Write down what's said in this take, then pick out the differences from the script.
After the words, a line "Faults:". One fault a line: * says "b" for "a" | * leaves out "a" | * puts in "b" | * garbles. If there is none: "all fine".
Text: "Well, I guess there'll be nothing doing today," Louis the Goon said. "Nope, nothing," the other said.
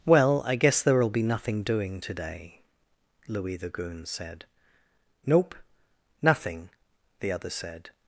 "Well, I guess there'll be nothing doing today," Louis the Goon said. "Nope, nothing," the other said.
Faults:
all fine